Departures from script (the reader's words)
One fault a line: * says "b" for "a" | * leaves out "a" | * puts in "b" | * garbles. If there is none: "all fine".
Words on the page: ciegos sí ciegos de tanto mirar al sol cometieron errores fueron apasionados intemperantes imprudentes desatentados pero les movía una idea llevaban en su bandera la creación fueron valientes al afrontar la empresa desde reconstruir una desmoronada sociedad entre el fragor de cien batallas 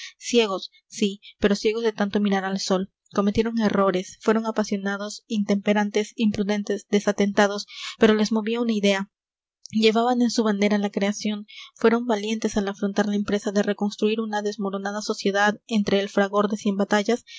* puts in "pero"
* says "de" for "desde"